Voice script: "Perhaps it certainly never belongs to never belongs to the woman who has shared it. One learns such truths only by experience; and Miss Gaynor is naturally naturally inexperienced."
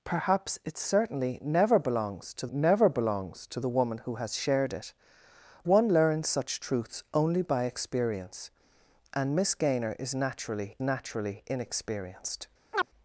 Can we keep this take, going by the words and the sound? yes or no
no